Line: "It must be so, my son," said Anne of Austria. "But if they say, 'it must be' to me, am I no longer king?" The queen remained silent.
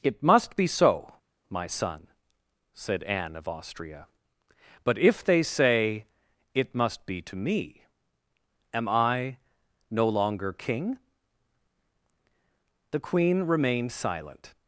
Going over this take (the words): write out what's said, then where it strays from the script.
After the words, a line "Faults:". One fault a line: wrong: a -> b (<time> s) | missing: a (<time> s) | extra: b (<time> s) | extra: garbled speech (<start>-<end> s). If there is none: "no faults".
"It must be so, my son," said Anne of Austria. "But if they say, 'it must be' to me, am I no longer king?" The queen remained silent.
Faults:
no faults